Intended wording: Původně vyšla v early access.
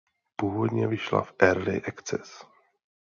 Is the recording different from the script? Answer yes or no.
no